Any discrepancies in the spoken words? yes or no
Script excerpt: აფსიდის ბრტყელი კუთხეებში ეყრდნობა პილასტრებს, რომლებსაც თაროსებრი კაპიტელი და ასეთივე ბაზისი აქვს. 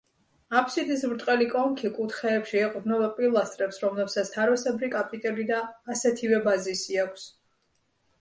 yes